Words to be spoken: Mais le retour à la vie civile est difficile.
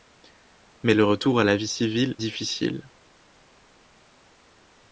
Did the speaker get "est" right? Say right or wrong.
wrong